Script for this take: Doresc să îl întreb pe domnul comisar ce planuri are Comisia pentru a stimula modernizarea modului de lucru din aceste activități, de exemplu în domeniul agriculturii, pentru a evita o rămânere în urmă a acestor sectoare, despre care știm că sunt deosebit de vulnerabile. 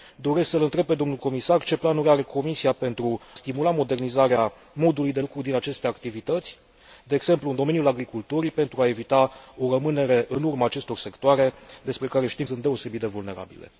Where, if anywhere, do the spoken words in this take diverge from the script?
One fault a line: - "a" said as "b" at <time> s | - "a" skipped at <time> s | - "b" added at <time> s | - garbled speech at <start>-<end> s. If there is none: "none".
- "a" skipped at 3.2 s
- "că" skipped at 12.5 s